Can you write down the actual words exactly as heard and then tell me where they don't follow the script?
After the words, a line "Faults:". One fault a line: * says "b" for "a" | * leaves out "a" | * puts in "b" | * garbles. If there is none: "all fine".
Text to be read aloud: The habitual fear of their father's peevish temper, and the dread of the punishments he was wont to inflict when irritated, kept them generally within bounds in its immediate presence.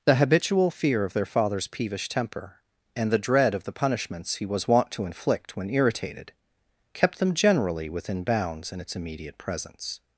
The habitual fear of their father's peevish temper, and the dread of the punishments he was wont to inflict when irritated, kept them generally within bounds in its immediate presence.
Faults:
all fine